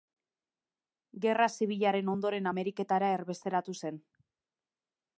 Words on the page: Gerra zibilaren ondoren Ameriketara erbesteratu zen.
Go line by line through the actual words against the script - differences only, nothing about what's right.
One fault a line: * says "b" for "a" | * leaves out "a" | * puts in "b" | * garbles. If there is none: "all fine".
all fine